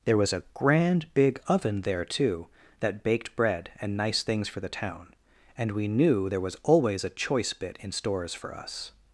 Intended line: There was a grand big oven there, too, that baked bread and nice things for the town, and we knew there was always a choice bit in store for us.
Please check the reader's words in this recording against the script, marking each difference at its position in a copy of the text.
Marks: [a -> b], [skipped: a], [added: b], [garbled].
There was a grand big oven there, too, that baked bread and nice things for the town, and we knew there was always a choice bit in [store -> stores] for us.